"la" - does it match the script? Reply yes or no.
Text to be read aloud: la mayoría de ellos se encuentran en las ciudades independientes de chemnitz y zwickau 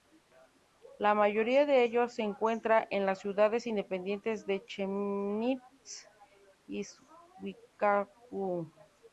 yes